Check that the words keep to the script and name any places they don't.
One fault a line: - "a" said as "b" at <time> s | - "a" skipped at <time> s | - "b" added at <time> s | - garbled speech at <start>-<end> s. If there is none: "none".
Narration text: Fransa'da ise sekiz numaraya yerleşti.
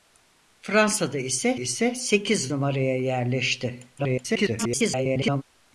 - "ise" added at 1.5 s
- garbled speech at 4.0-5.4 s